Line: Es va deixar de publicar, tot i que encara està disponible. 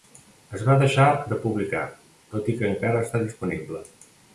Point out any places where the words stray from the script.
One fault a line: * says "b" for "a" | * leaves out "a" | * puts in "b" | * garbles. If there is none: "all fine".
all fine